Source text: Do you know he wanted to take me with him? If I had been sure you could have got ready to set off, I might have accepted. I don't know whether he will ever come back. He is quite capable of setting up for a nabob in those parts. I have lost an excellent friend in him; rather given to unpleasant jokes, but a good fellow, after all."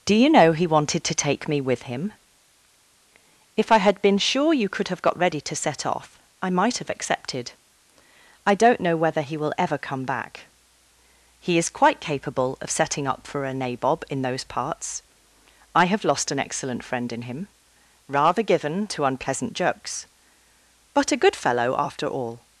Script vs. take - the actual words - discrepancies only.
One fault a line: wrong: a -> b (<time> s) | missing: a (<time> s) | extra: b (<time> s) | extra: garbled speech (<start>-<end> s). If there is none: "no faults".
no faults